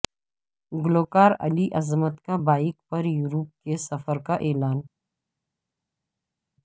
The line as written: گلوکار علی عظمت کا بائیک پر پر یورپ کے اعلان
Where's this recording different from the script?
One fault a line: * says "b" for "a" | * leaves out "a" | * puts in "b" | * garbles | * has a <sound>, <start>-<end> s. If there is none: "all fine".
* leaves out "پر"
* puts in "سفر کا"